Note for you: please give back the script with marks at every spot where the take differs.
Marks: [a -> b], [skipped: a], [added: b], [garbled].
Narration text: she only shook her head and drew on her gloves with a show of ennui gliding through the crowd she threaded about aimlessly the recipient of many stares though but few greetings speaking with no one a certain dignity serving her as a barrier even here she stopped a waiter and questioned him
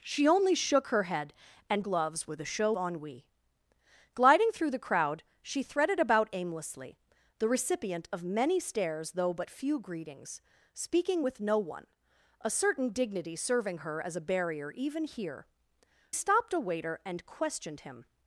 she only shook her head and [skipped: drew on her] gloves with a show [skipped: of] ennui gliding through the crowd she threaded about aimlessly the recipient of many stares though but few greetings speaking with no one a certain dignity serving her as a barrier even here [skipped: she] stopped a waiter and questioned him